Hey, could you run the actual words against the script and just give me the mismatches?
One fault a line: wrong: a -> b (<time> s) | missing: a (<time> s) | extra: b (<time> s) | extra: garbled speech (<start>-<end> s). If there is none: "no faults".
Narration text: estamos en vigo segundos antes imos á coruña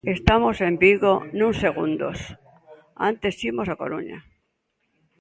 extra: nuns (1.3 s)